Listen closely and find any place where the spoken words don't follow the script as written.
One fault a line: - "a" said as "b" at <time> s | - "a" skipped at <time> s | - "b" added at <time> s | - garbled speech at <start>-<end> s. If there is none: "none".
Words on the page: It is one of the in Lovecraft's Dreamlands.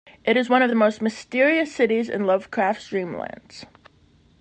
- "most mysterious cities" added at 0.7 s